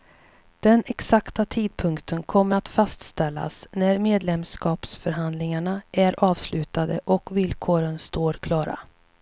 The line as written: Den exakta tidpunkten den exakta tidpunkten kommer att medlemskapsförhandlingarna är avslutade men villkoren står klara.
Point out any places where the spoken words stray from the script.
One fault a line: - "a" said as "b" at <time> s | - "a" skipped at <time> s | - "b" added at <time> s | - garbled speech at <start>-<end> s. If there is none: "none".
- "den exakta tidpunkten kommer att" said as "kommer att fastställas när" at 2.2 s
- "men" said as "och" at 7.0 s